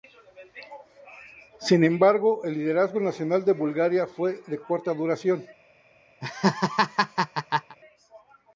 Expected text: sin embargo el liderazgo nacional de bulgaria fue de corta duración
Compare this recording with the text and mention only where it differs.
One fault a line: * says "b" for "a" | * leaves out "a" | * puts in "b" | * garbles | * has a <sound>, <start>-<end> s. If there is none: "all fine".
* has a laugh, 6.2-7.8 s